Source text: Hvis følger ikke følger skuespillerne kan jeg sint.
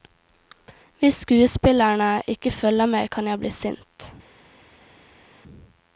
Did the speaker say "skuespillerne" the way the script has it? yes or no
no